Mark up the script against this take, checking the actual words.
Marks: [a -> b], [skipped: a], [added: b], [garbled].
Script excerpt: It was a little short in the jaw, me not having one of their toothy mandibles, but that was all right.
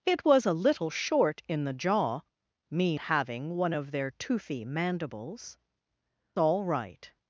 It was a little short in the jaw, me [skipped: not] having one of their toothy mandibles, [skipped: but that was] all right.